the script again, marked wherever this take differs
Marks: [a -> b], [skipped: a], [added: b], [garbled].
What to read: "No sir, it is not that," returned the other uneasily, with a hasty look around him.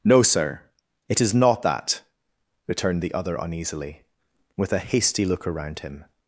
"No sir, it is not that," returned the other uneasily, with a hasty look around him.